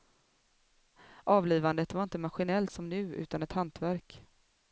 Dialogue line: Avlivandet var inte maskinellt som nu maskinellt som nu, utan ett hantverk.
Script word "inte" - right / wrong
right